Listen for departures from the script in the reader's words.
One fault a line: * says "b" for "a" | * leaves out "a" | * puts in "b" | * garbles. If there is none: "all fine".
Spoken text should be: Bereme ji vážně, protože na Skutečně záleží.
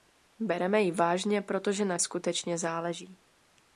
all fine